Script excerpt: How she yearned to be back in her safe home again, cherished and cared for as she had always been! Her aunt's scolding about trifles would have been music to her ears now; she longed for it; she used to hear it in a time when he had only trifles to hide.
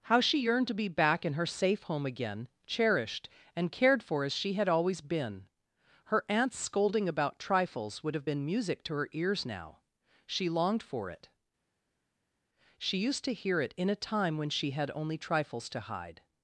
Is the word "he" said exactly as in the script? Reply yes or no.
no